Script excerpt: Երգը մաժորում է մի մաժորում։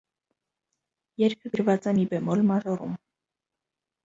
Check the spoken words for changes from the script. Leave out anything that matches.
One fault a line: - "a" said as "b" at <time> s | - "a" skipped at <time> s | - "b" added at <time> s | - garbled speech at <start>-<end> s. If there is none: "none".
- "մաժորում" said as "գրված" at 1.5 s
- "բեմոլ" added at 2.2 s